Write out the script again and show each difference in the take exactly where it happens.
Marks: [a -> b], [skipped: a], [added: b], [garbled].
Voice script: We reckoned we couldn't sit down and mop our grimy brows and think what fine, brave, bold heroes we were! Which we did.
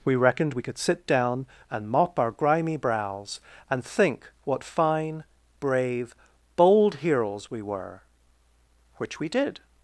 We reckoned we [couldn't -> could] sit down and mop our grimy brows and think what fine, brave, bold heroes we were! Which we did.